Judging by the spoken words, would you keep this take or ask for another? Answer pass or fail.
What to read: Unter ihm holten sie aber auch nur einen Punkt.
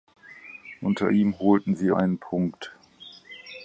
fail